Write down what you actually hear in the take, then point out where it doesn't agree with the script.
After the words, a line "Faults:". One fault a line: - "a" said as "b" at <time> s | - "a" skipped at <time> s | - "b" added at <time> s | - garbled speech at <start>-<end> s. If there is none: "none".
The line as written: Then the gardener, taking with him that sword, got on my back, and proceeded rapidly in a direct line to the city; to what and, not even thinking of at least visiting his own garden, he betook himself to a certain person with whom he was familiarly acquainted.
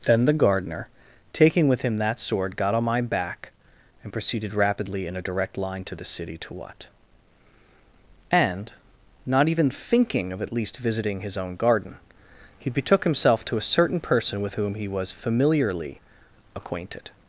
Then the gardener, taking with him that sword, got on my back, and proceeded rapidly in a direct line to the city; to what and, not even thinking of at least visiting his own garden, he betook himself to a certain person with whom he was familiarly acquainted.
Faults:
none